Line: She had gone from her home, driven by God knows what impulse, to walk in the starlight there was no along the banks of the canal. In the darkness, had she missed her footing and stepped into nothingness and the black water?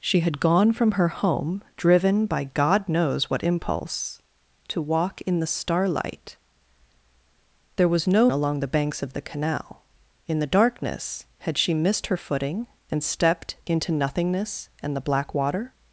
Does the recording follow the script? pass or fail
pass